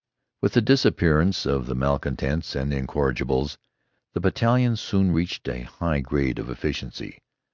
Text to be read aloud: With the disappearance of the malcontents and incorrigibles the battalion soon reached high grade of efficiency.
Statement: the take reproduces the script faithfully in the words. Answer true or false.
false